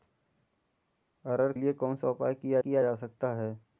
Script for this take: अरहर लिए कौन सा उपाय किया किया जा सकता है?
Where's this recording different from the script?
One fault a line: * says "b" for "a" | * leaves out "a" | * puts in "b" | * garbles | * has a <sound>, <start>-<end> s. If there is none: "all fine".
all fine